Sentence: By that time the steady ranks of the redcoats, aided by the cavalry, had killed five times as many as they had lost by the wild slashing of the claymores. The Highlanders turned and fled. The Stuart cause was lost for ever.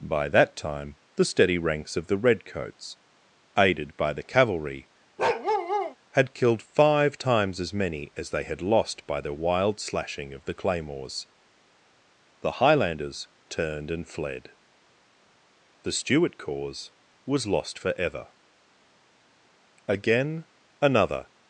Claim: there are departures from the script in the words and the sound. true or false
true